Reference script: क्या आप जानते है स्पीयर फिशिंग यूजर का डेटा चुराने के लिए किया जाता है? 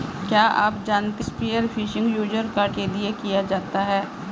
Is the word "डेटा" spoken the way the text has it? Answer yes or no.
no